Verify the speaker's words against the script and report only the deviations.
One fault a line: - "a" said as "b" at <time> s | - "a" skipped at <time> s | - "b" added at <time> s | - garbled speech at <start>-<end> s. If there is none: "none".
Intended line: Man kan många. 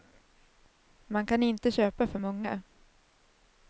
- "inte köpa för" added at 1.4 s